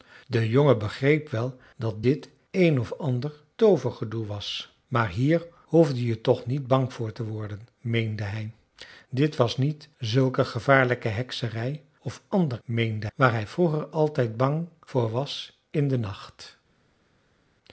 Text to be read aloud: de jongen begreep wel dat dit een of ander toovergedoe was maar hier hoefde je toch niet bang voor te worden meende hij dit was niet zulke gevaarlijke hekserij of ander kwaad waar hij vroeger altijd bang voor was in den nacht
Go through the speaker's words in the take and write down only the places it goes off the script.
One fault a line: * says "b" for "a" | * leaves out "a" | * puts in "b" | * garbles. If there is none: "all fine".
* says "meende" for "kwaad"